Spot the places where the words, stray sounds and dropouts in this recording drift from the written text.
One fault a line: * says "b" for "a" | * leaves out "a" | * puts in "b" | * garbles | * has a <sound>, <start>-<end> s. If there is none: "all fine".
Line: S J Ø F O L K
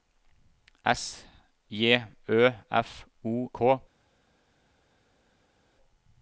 * leaves out "L"